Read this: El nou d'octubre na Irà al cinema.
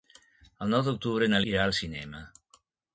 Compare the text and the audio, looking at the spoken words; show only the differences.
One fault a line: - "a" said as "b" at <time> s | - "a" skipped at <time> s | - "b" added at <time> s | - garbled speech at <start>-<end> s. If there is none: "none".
none